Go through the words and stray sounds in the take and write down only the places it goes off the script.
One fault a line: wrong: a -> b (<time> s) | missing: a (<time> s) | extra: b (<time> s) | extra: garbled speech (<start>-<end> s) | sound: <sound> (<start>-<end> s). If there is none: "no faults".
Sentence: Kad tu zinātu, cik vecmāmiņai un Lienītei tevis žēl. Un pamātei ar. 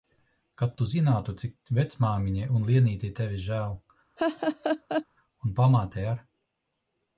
sound: laugh (4.2-5.1 s)